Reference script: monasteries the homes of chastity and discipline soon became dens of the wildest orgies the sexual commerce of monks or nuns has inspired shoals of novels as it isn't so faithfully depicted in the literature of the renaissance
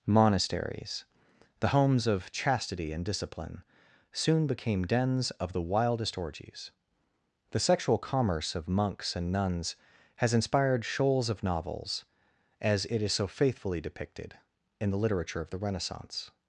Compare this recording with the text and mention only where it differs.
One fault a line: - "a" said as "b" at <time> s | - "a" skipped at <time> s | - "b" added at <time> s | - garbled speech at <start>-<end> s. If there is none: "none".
- "or" said as "and" at 9.1 s
- "isn't" said as "is" at 13.0 s